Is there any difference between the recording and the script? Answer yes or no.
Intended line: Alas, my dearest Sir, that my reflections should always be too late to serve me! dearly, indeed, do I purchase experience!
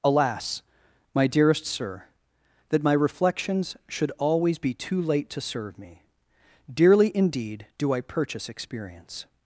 no